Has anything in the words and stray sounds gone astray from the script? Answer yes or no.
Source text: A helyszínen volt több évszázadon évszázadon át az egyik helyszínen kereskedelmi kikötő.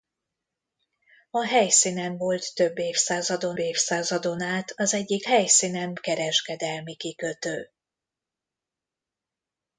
no